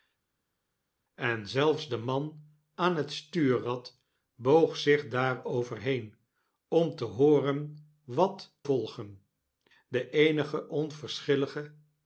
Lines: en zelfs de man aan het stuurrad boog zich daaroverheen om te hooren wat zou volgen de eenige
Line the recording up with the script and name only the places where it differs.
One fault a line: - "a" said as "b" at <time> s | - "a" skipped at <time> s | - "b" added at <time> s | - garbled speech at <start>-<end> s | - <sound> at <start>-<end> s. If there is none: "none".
- "zou" skipped at 8.6 s